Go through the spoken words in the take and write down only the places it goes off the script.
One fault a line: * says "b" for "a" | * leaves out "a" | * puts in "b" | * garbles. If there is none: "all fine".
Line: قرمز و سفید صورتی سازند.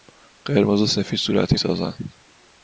all fine